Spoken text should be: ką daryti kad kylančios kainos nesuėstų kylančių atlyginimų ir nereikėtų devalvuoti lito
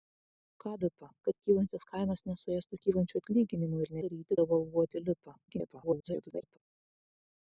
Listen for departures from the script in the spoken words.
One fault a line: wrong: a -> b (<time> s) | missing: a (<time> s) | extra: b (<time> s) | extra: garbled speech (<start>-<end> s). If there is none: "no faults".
wrong: daryti -> lito (0.8 s)
wrong: nereikėtų -> daryti (4.0 s)
extra: garbled speech (5.5-6.6 s)